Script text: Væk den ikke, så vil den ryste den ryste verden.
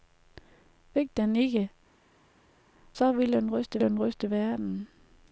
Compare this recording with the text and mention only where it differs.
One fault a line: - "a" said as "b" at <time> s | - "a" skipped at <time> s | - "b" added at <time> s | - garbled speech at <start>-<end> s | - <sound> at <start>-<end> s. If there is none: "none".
none